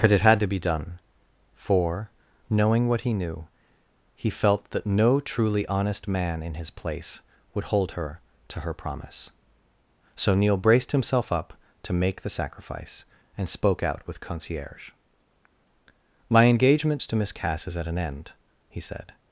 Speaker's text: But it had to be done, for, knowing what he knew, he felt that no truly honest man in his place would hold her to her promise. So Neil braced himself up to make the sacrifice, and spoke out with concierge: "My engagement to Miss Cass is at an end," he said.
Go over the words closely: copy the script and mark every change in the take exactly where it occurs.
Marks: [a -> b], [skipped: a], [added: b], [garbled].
But it had to be done, for, knowing what he knew, he felt that no truly honest man in his place would hold her to her promise. So Neil braced himself up to make the sacrifice, and spoke out with concierge: "My engagement to Miss Cass is at an end," he said.